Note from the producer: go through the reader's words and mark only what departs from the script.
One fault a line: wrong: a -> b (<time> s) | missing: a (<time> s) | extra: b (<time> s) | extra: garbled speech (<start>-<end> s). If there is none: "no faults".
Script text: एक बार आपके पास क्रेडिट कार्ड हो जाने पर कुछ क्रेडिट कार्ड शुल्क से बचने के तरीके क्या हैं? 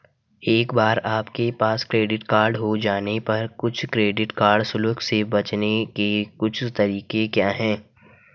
extra: कुछ (6.4 s)